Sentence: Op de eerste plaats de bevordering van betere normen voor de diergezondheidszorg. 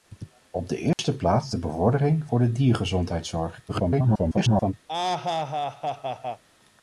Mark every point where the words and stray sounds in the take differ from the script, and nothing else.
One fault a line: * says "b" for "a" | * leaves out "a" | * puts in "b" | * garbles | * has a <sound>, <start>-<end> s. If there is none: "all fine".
* has a dropout, 0.9-1.0 s
* leaves out "van betere normen"
* garbles
* has a laugh, 4.9-6.4 s